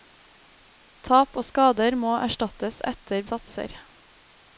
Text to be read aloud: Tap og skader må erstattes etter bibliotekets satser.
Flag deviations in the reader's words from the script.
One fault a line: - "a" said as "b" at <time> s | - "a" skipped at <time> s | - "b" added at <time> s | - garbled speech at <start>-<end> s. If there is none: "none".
- "bibliotekets" skipped at 3.3 s